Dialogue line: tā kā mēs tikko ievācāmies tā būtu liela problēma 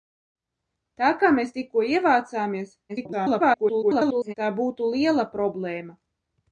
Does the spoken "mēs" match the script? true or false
true